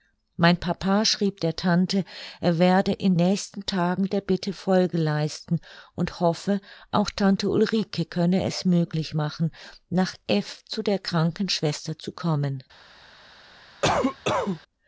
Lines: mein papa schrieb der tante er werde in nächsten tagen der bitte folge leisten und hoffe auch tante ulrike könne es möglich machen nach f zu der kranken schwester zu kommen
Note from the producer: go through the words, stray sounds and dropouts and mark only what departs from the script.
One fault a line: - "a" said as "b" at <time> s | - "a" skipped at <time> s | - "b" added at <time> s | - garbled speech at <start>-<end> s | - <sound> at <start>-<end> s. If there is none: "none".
- cough at 13.8-14.6 s